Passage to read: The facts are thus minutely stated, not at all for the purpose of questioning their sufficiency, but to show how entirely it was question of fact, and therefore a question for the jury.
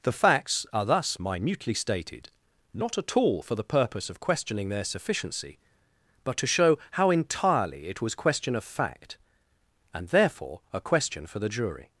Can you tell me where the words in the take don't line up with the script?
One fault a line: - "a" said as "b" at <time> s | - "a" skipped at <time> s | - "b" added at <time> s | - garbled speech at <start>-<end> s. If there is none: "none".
none